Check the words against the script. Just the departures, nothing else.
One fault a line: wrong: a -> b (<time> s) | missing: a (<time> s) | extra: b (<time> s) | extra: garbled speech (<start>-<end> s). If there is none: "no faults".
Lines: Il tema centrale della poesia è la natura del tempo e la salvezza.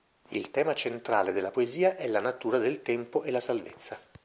no faults